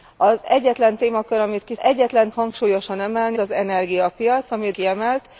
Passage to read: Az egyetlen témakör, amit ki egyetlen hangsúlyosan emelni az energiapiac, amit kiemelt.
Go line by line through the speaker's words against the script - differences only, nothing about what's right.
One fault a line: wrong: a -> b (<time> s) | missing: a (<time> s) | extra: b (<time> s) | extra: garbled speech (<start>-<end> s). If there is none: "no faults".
no faults